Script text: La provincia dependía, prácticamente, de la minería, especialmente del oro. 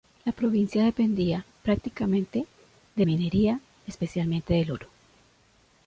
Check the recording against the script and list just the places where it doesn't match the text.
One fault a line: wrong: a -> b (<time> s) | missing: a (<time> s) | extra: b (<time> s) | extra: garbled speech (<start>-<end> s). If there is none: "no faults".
missing: la (3.0 s)